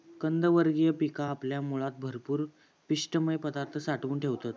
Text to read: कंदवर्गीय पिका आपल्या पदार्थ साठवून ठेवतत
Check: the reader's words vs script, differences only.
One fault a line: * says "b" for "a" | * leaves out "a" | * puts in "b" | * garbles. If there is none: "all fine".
* puts in "मुळात भरपूर पिष्टमय"